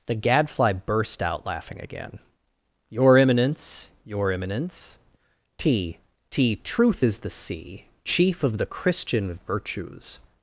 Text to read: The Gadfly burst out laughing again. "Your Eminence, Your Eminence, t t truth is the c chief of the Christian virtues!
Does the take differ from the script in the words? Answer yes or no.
no